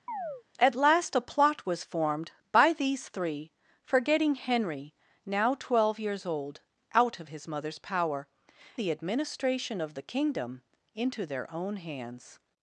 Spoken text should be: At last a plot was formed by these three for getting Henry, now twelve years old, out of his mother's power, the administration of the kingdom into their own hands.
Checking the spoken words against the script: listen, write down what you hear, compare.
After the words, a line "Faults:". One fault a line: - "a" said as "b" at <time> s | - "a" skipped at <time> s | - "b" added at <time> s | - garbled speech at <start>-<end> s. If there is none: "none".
At last a plot was formed by these three for getting Henry, now twelve years old, out of his mother's power, the administration of the kingdom into their own hands.
Faults:
none